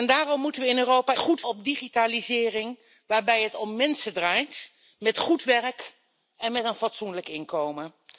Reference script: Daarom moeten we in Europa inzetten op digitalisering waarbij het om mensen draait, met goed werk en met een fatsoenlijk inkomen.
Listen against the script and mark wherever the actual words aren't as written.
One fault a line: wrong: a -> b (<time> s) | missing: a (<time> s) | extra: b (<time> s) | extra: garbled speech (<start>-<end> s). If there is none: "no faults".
wrong: inzetten -> goed (1.2 s)